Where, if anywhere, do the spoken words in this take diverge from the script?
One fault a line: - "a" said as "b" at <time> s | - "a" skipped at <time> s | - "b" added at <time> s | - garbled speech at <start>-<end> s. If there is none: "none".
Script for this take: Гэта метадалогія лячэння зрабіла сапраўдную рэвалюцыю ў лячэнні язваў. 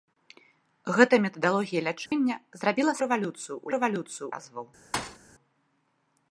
- "сапраўдную" skipped at 2.9 s
- "лячэнні" said as "рэвалюцыю" at 3.8 s